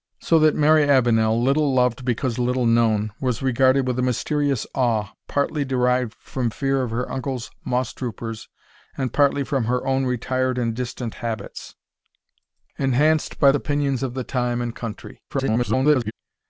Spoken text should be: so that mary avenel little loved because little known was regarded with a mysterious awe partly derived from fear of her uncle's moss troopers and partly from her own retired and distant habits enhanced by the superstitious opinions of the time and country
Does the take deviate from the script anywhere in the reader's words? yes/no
yes